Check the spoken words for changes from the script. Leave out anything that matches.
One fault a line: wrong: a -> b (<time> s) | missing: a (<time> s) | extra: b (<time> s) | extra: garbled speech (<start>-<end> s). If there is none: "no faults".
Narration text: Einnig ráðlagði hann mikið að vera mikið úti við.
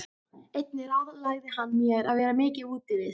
wrong: mikið -> mér (1.8 s)